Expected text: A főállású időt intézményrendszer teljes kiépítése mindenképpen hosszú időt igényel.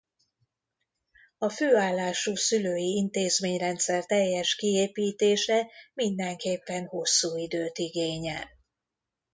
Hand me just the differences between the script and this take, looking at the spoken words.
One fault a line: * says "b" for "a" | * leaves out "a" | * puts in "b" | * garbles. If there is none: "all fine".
* says "szülői" for "időt"